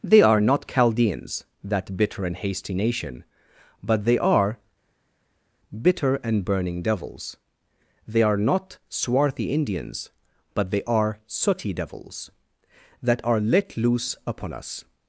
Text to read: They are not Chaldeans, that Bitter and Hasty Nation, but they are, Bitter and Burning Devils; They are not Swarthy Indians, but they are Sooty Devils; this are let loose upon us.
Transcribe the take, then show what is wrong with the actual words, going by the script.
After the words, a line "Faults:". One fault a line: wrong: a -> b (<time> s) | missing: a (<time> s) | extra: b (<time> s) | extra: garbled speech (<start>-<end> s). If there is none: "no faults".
They are not Chaldeans, that Bitter and Hasty Nation, but they are, Bitter and Burning Devils; They are not Swarthy Indians, but they are Sooty Devils; that are let loose upon us.
Faults:
wrong: this -> that (13.0 s)